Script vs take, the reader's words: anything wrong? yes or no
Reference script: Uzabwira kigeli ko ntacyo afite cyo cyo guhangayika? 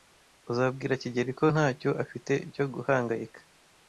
yes